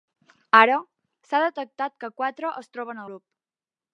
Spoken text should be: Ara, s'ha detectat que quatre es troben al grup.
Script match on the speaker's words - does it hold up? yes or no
no